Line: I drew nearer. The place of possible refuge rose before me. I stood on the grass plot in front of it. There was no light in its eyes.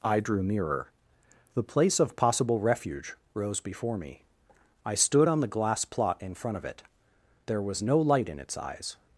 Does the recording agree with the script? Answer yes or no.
no